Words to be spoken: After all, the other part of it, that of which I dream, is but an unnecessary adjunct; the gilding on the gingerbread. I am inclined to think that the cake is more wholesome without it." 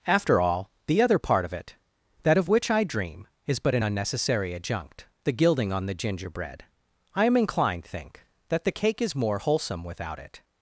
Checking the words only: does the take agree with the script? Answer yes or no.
no